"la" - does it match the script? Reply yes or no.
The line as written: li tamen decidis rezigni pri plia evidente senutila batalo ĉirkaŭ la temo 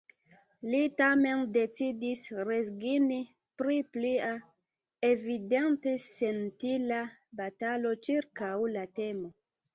yes